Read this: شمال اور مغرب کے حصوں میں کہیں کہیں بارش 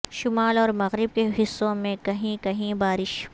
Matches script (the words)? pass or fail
pass